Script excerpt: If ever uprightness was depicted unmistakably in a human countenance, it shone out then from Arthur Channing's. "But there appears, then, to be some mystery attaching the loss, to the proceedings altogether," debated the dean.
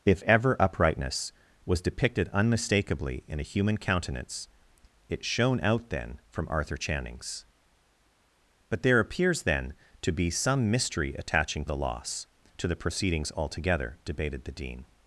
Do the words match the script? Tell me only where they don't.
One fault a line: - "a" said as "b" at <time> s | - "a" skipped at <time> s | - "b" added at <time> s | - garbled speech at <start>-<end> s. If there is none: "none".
none